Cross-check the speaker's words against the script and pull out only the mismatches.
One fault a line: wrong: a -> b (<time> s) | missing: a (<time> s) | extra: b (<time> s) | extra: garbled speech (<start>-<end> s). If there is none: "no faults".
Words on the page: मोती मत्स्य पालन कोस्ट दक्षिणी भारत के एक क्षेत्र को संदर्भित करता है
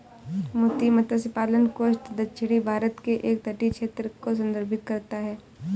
extra: तटीय (3.4 s)